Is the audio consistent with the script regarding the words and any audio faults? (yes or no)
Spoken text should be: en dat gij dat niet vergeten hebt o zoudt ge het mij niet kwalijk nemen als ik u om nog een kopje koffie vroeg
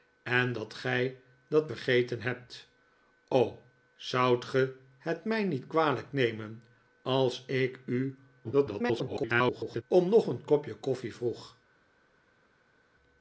no